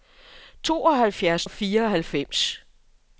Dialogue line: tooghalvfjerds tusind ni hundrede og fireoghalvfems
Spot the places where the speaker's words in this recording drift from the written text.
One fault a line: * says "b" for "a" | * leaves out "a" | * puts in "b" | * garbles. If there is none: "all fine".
* leaves out "tusind ni hundrede"